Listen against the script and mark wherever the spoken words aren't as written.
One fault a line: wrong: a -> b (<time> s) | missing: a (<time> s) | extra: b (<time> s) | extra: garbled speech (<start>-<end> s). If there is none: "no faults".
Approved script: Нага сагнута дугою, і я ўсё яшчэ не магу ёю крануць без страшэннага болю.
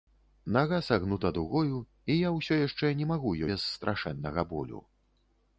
missing: ёю крануць (3.4 s)